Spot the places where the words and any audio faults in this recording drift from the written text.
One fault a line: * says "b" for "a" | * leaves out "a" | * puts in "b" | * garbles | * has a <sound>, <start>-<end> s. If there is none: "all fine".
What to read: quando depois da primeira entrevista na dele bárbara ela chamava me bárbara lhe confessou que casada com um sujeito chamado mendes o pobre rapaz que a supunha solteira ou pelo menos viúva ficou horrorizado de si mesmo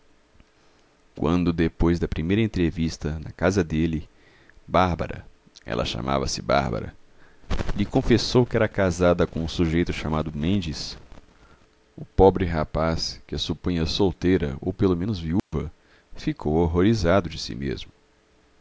* puts in "casa"
* says "se" for "me"
* puts in "era"
* has a dropout, 15.4-15.5 s